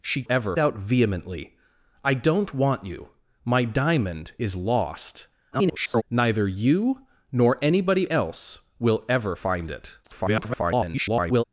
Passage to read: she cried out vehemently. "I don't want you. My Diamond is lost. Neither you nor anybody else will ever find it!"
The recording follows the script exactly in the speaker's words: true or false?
false